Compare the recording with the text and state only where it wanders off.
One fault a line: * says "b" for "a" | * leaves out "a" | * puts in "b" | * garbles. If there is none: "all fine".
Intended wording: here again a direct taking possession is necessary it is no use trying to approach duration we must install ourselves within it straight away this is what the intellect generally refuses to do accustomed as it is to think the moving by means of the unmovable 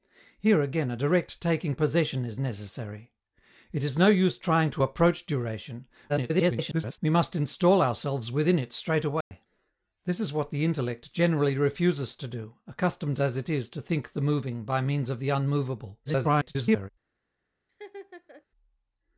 * garbles
* garbles